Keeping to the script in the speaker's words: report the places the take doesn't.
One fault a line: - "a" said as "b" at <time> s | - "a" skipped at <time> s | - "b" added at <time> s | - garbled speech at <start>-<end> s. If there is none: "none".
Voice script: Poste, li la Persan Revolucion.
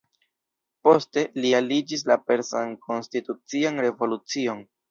- "aliĝis" added at 1.6 s
- "Konstitucian" added at 2.8 s